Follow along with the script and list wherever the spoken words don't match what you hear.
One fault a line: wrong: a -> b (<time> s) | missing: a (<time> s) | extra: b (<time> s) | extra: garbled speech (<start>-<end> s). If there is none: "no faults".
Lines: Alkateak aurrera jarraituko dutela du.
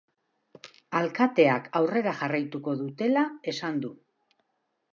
extra: esan (3.5 s)